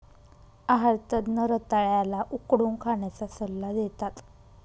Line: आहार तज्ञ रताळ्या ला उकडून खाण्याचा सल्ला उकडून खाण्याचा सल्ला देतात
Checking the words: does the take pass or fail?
fail